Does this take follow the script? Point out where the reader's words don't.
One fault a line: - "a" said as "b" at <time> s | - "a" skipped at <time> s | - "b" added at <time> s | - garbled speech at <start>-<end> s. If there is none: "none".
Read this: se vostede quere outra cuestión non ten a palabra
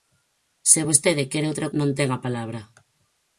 - "cuestión" skipped at 1.7 s